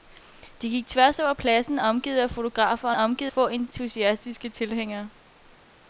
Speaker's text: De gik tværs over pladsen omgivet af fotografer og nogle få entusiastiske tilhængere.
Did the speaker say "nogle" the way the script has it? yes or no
no